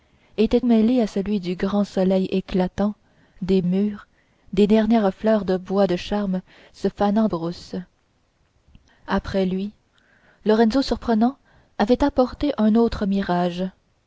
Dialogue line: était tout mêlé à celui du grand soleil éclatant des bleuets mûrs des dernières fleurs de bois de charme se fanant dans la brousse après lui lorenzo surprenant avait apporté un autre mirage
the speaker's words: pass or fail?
fail